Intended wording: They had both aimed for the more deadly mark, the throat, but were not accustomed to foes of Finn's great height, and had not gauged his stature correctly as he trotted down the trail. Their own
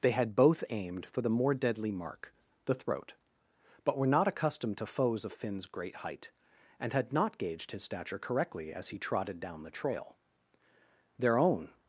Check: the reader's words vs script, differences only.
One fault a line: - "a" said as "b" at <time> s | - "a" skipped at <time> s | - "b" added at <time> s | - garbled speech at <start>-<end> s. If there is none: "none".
none